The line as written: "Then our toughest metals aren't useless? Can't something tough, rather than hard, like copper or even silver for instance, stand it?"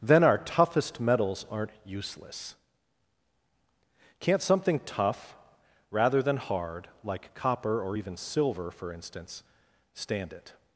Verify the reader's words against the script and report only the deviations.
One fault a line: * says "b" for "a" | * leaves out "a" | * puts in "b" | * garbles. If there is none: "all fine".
all fine